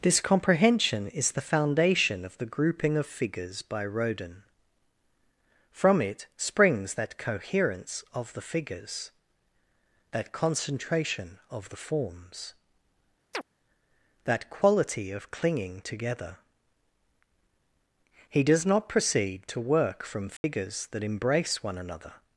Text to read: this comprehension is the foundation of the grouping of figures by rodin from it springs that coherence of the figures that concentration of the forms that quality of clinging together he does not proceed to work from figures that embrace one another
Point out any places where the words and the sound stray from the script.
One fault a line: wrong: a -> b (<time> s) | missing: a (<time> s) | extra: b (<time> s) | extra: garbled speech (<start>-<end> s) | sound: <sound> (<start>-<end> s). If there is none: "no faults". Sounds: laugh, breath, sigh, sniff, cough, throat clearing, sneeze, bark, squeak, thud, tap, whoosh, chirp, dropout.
sound: chirp (13.3-13.4 s)
sound: dropout (20.4-20.4 s)